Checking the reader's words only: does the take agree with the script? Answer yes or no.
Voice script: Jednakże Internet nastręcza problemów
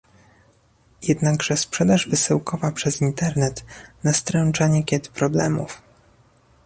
no